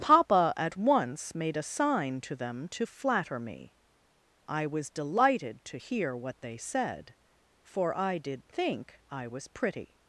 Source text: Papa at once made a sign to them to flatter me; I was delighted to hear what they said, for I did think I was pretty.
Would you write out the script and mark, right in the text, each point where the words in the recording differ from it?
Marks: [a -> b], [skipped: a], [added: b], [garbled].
Papa at once made a sign to them to flatter me; I was delighted to hear what they said, for I did think I was pretty.